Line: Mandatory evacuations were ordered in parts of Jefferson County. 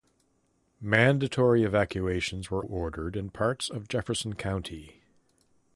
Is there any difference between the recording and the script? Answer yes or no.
no